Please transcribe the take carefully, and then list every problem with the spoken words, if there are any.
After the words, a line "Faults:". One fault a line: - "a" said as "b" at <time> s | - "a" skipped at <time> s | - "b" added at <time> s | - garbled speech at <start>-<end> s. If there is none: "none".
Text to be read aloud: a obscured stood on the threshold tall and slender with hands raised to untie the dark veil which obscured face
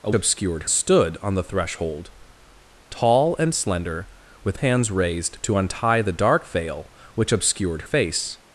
a obscured stood on the threshold tall and slender with hands raised to untie the dark veil which obscured face
Faults:
none